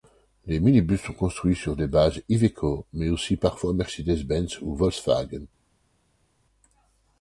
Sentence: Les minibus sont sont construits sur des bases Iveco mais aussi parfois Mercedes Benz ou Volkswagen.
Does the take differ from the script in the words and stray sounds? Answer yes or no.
yes